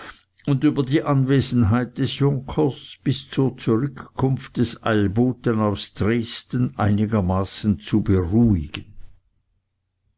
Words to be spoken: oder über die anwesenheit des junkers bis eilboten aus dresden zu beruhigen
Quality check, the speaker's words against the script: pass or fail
fail